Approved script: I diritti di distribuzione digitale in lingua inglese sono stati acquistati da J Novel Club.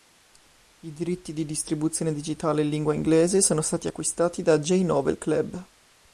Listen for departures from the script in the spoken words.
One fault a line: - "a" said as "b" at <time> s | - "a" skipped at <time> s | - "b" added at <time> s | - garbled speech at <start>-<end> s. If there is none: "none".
none